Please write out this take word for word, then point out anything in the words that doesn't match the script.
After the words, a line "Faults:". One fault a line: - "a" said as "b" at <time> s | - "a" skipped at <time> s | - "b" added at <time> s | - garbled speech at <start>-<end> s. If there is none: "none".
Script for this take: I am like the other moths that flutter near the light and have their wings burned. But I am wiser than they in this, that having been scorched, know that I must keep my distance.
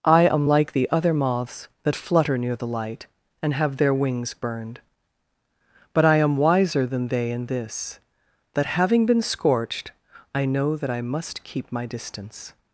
I am like the other moths that flutter near the light and have their wings burned. But I am wiser than they in this, that having been scorched, I know that I must keep my distance.
Faults:
- "I" added at 10.3 s